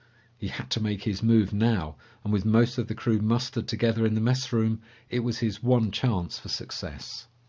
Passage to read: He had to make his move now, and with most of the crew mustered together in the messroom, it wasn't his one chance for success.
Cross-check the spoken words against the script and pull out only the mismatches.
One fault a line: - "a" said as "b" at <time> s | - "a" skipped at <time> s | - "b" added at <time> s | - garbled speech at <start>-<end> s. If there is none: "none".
- "wasn't" said as "was" at 5.3 s